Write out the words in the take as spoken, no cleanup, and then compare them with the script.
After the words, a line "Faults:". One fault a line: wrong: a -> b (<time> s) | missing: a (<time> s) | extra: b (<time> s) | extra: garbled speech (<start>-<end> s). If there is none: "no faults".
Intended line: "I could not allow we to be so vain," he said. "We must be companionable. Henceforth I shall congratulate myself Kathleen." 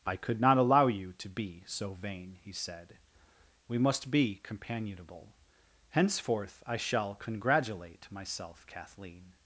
"I could not allow you to be so vain," he said. "We must be companionable. Henceforth I shall congratulate myself Kathleen."
Faults:
wrong: we -> you (0.9 s)